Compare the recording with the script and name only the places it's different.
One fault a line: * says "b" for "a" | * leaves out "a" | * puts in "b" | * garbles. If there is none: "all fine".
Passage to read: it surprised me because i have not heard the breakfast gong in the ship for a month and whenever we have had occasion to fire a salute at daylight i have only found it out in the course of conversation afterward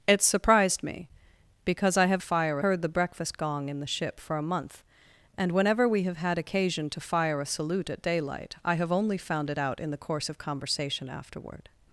* says "fire" for "not"